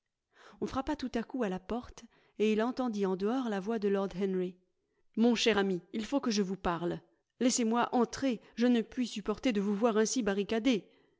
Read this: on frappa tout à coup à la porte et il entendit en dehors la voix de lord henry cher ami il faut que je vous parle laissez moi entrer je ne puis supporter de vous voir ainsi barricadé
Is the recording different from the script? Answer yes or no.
yes